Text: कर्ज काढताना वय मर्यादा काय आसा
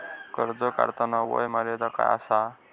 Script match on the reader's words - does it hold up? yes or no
yes